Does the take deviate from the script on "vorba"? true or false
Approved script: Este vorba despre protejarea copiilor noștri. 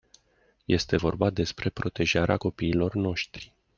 false